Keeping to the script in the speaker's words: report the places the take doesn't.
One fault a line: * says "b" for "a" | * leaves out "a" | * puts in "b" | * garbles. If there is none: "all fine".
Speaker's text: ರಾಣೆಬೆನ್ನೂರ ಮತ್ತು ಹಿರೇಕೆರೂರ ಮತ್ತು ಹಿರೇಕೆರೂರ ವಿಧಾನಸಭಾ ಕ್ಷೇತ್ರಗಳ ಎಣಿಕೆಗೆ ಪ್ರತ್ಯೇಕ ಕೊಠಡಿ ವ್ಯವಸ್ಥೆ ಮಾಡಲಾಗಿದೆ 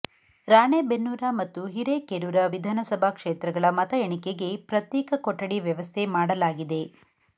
* leaves out "ಮತ್ತು ಹಿರೇಕೆರೂರ"
* puts in "ಮತ"